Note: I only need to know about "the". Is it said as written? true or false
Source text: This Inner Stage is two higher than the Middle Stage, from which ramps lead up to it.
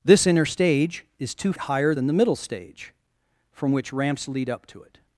true